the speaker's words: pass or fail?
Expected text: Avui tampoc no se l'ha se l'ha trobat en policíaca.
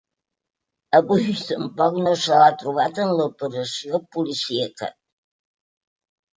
fail